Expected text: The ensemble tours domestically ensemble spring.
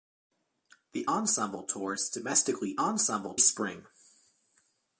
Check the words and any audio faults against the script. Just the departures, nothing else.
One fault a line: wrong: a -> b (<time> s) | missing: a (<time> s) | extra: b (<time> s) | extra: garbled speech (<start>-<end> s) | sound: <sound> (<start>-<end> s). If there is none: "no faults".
no faults